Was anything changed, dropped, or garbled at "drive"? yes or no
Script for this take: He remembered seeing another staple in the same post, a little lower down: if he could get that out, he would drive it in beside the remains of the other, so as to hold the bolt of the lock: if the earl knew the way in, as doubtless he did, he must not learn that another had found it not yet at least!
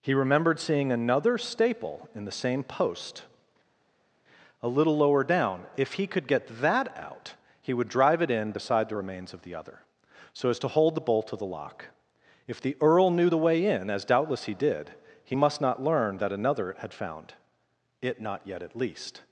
no